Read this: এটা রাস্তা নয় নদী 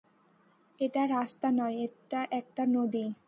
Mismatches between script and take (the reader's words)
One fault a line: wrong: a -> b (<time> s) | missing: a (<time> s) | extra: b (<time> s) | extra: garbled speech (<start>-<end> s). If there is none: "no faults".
extra: এটা একটা (1.8 s)